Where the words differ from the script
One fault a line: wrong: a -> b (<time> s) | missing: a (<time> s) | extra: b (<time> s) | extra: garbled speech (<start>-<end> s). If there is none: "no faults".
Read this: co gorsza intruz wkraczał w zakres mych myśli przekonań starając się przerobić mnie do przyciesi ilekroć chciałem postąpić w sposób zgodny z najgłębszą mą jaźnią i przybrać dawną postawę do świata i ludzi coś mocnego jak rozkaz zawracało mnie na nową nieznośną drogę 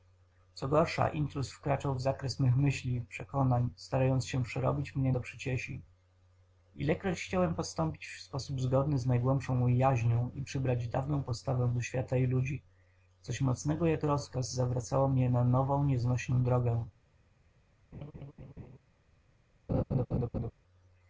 no faults